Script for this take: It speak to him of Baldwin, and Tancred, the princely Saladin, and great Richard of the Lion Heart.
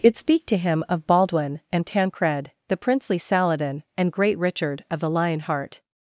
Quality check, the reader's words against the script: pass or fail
pass